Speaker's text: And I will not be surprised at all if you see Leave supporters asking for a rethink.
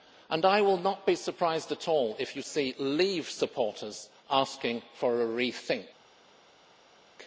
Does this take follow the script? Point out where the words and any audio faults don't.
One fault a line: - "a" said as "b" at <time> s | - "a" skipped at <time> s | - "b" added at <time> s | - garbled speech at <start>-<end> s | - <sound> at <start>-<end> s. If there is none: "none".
none